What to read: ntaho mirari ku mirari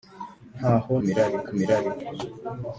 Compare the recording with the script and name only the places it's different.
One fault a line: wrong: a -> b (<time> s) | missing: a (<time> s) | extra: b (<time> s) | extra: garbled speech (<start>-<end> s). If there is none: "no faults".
no faults